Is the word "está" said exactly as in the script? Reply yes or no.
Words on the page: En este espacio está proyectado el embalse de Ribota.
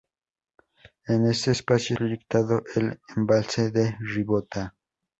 no